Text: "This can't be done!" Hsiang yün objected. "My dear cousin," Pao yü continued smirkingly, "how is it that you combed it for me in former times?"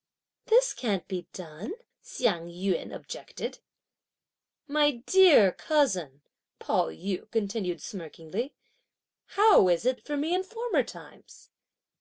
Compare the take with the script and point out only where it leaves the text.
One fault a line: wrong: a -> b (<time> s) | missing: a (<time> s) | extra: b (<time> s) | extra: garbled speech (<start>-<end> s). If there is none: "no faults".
missing: that you combed (10.0 s)